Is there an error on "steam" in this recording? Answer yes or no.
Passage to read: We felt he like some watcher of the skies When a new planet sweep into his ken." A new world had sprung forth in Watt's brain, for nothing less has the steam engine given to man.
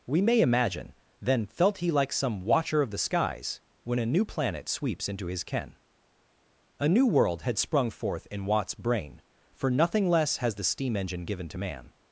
no